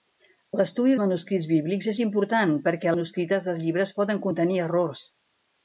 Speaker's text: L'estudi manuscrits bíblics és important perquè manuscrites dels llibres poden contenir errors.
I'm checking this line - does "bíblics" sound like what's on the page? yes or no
yes